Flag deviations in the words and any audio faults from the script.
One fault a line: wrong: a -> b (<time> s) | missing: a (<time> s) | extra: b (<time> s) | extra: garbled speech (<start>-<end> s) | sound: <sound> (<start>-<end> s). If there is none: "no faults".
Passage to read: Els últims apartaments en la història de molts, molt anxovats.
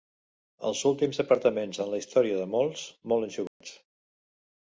sound: dropout (3.5-3.6 s)